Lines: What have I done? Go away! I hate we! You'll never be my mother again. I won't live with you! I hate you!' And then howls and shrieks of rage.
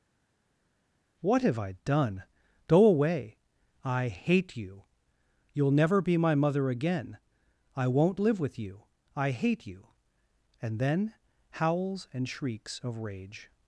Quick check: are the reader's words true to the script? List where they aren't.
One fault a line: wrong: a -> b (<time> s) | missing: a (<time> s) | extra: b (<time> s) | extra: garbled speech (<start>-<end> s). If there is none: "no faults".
wrong: we -> you (4.6 s)